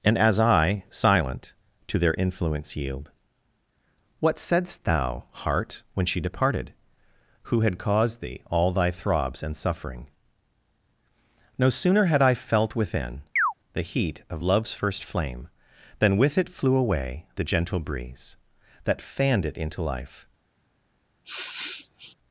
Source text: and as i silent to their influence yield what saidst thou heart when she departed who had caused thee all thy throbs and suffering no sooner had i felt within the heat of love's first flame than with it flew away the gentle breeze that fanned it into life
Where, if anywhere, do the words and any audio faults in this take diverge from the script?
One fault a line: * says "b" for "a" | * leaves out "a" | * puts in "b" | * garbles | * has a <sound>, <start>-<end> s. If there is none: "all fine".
* has a chirp, 13.4-13.5 s
* has a sniff, 21.2-22.2 s